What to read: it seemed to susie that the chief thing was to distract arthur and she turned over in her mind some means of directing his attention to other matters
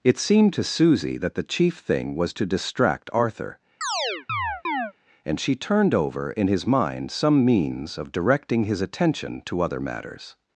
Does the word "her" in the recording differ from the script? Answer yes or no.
yes